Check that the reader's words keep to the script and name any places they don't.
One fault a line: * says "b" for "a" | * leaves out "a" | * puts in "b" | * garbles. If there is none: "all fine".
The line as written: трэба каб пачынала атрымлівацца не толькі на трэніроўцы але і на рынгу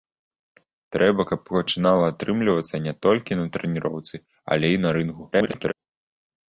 * garbles